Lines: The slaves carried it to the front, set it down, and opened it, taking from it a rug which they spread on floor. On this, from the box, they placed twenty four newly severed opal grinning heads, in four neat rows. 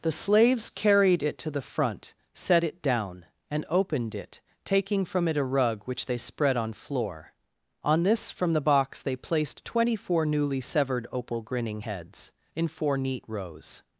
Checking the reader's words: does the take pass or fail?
pass